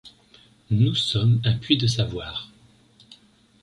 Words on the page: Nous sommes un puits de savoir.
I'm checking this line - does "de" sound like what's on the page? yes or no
yes